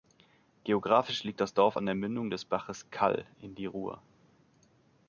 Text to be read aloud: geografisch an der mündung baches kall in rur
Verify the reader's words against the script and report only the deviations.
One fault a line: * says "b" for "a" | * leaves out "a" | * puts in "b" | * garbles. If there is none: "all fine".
* puts in "liegt das dorf"
* puts in "des"
* puts in "die"